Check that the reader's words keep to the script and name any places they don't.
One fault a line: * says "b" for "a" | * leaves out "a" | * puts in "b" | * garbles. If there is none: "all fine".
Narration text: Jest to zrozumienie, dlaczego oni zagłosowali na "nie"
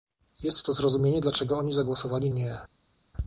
* leaves out "na"